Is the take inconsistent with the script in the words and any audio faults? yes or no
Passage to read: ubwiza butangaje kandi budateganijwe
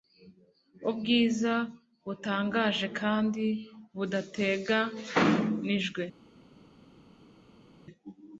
no